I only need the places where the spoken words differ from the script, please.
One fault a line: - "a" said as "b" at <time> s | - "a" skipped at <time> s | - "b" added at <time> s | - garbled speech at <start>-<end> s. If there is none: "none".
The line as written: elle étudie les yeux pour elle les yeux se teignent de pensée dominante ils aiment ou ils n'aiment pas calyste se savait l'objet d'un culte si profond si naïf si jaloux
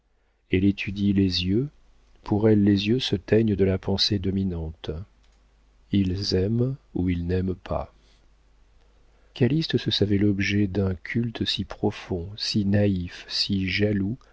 - "la" added at 3.6 s